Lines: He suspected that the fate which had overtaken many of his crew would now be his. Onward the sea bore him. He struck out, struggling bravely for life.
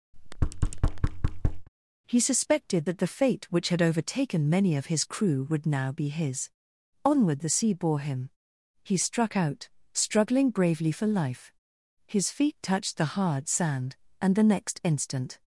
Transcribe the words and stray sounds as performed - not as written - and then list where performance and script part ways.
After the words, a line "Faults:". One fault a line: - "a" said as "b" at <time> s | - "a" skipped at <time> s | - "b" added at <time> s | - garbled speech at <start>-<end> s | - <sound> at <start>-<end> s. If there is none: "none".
He suspected that the fate which had overtaken many of his crew would now be his. Onward the sea bore him. He struck out, struggling bravely for life. His feet touched the hard sand, and the next instant
Faults:
- thud at 0.1-1.7 s
- "His feet touched the hard sand and the next instant" added at 12.0 s